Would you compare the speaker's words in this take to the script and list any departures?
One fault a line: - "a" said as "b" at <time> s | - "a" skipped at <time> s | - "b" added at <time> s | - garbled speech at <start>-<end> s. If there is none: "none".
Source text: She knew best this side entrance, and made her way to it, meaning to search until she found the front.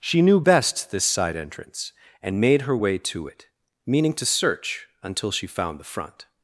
none